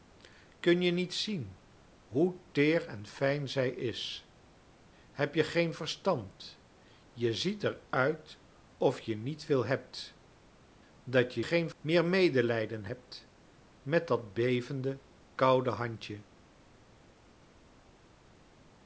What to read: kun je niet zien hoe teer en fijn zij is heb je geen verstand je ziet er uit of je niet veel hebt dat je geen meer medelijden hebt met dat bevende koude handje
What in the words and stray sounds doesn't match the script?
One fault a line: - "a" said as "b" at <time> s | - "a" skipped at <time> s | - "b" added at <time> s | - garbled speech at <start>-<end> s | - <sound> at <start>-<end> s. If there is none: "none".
none